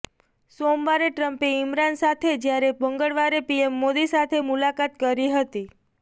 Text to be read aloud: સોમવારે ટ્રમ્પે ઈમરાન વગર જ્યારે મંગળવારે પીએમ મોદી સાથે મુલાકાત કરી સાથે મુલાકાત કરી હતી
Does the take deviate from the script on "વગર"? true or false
true